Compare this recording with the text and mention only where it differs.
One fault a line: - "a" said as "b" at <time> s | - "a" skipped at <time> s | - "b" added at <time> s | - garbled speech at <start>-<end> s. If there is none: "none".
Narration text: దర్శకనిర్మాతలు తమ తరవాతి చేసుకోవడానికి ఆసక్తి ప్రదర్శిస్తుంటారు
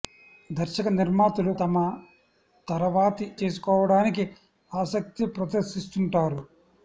none